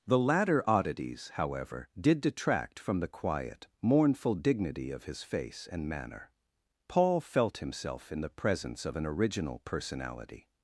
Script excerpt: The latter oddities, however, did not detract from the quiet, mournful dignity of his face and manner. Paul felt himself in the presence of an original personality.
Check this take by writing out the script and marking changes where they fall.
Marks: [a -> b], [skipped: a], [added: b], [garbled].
The latter oddities, however, did [skipped: not] detract from the quiet, mournful dignity of his face and manner. Paul felt himself in the presence of an original personality.